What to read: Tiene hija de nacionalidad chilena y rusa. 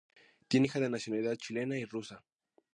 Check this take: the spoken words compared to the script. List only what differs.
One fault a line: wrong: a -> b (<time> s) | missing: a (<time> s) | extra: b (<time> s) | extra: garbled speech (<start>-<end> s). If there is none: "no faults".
no faults